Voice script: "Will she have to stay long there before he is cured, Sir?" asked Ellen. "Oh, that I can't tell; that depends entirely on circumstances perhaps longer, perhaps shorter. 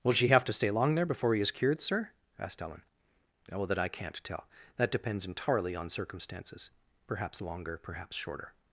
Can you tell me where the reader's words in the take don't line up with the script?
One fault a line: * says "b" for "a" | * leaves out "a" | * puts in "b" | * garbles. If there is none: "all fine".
all fine